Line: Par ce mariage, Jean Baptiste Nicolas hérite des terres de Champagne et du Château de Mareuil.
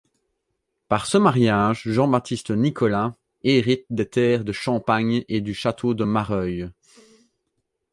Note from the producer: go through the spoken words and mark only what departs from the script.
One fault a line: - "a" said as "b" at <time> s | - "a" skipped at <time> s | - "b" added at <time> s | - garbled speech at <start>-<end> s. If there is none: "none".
none